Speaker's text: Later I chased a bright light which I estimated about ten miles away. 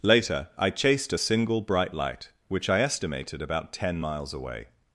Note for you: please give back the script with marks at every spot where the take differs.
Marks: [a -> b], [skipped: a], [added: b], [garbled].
Later I chased a [added: single] bright light which I estimated about ten miles away.